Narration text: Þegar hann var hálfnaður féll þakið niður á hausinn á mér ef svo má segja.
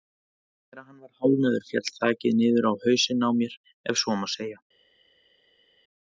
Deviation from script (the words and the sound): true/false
false